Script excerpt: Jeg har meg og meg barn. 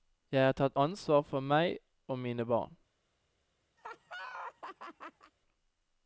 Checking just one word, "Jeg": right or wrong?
right